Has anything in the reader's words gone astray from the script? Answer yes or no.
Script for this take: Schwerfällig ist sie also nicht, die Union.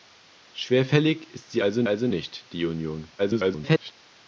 yes